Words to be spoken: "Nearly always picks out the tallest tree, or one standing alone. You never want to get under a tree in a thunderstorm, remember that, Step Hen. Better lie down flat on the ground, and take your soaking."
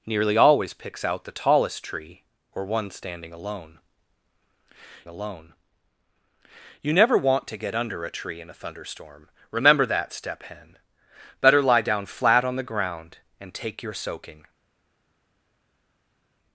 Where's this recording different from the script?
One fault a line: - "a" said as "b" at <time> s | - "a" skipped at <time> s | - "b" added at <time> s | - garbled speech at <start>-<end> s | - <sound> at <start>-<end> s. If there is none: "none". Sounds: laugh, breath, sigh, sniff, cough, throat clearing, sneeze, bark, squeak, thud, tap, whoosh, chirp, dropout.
- "alone" added at 5.1 s